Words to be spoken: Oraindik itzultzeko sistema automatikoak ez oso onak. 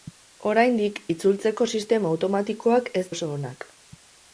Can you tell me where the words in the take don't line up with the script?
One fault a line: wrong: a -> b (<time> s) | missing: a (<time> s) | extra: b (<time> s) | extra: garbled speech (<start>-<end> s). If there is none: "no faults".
no faults